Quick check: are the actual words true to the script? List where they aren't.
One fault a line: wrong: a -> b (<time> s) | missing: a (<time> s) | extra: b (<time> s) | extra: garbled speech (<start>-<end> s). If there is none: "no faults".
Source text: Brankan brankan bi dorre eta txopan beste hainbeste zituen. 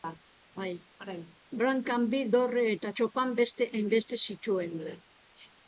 missing: brankan (2.1 s)